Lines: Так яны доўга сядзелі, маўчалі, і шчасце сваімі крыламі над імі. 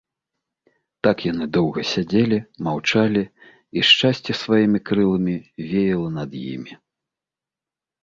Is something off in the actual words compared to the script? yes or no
yes